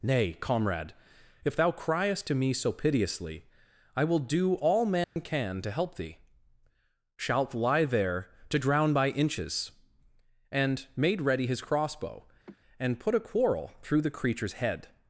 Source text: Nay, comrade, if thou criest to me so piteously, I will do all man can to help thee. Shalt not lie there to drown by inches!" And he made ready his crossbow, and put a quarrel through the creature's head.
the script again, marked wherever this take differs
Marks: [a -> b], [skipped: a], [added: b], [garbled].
Nay, comrade, if thou criest to me so piteously, I will do all man can to help thee. Shalt [skipped: not] lie there to drown by inches!" And [skipped: he] made ready his crossbow, and put a quarrel through the creature's head.